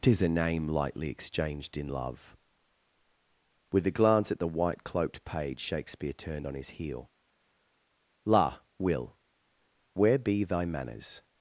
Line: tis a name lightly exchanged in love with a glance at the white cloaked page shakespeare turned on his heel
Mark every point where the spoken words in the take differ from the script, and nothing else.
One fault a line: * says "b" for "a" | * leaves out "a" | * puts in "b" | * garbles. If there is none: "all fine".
* puts in "la will where be thy manners"